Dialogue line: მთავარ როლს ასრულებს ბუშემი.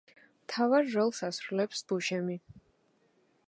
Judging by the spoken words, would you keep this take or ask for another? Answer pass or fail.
pass